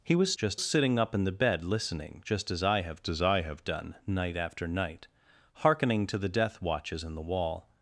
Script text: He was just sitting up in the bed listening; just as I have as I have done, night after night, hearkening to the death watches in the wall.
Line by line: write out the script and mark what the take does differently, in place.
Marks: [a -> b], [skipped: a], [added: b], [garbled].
He was just sitting up in the bed listening; just as I have as I have done, night after night, hearkening to the death watches in the wall.